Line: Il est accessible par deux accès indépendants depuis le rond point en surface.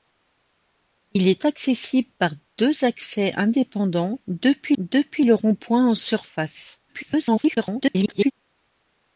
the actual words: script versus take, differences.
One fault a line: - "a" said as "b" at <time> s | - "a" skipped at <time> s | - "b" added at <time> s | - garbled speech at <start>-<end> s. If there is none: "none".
- "depuis" added at 4.8 s
- garbled speech at 6.9-8.3 s